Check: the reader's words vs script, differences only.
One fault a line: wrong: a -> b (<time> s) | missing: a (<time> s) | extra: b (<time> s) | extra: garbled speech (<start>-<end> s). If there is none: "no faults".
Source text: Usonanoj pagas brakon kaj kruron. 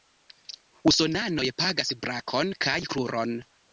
no faults